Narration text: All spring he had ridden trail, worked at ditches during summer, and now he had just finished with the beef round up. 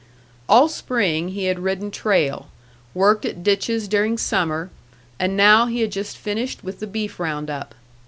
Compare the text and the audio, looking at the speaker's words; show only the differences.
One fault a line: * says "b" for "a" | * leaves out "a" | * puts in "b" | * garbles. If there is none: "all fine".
all fine